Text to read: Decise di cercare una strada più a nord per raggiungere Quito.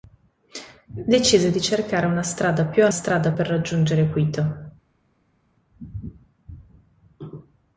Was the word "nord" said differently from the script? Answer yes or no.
yes